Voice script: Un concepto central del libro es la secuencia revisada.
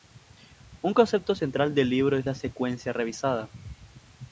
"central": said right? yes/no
yes